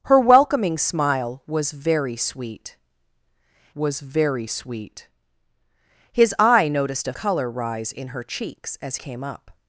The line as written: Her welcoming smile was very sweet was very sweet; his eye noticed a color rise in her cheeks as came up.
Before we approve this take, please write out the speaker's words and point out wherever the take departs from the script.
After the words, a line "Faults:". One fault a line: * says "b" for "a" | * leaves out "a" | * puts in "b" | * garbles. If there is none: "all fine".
Her welcoming smile was very sweet was very sweet; his eye noticed a color rise in her cheeks as came up.
Faults:
all fine